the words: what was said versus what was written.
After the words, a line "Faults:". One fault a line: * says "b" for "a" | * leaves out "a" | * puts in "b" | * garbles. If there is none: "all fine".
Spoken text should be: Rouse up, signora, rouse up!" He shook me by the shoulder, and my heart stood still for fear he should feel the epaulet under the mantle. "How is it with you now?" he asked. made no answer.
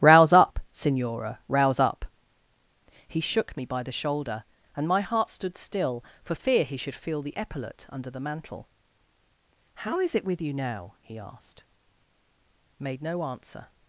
Rouse up, signora, rouse up!" He shook me by the shoulder, and my heart stood still for fear he should feel the epaulet under the mantle. "How is it with you now?" he asked. made no answer.
Faults:
all fine